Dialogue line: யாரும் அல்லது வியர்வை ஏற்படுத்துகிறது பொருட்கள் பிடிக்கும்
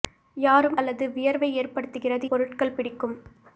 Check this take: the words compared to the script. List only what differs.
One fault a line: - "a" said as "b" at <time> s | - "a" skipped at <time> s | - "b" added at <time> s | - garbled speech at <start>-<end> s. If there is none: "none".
none